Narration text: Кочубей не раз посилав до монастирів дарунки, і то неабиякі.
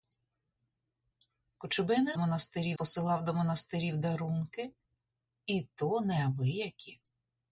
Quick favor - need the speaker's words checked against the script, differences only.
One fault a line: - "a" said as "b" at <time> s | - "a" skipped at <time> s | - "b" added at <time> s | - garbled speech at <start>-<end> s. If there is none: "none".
- "раз" said as "монастирів" at 2.2 s